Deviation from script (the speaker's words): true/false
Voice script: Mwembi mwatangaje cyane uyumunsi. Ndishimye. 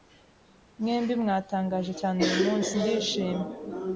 false